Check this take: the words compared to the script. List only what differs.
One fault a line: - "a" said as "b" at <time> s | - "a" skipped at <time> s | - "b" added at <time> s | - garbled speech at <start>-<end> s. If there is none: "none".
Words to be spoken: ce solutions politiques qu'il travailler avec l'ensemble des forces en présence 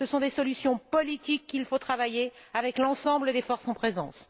- "sont des" added at 0.1 s
- "faut" added at 1.6 s